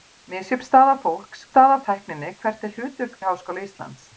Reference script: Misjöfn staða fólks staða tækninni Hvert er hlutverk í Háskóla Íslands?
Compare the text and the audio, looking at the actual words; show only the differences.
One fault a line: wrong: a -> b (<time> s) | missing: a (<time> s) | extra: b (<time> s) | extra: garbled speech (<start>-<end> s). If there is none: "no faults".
no faults